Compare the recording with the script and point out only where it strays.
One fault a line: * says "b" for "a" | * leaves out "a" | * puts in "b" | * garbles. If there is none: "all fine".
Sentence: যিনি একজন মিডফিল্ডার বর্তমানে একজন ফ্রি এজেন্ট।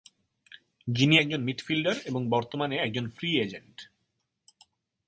* puts in "এবং"